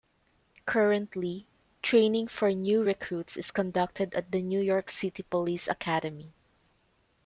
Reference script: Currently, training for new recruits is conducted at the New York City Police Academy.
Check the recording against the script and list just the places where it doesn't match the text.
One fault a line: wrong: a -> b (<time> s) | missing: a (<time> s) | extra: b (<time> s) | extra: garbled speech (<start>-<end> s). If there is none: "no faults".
no faults